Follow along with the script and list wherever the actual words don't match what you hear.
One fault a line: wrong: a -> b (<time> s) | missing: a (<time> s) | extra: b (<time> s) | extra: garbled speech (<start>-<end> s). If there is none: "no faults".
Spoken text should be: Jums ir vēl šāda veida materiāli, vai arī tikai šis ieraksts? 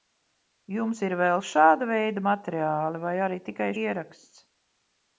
missing: šis (3.7 s)